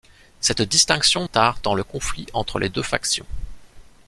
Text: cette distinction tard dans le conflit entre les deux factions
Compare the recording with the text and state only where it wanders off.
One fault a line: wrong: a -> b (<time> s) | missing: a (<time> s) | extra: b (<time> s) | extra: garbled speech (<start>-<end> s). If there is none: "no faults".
no faults